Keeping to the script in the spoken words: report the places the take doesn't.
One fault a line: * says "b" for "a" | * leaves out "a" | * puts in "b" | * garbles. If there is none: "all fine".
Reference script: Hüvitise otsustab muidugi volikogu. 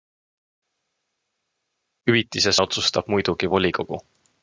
all fine